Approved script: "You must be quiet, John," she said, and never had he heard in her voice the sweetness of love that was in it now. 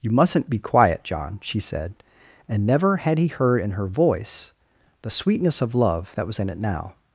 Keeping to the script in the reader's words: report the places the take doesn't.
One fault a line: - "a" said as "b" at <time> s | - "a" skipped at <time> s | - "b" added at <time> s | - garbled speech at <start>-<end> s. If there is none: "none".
- "must" said as "mustn't" at 0.1 s